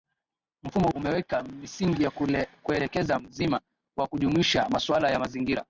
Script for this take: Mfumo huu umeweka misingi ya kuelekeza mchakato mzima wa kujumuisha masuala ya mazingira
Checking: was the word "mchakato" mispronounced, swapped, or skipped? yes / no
yes